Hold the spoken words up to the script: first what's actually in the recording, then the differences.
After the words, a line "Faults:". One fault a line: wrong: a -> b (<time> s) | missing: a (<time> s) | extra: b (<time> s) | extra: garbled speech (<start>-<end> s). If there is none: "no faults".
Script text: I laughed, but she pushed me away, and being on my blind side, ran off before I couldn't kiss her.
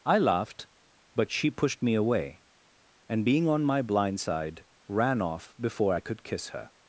I laughed, but she pushed me away, and being on my blind side, ran off before I could kiss her.
Faults:
wrong: couldn't -> could (6.0 s)